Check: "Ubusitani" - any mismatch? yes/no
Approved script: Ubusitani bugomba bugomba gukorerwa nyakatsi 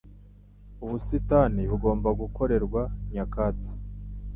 no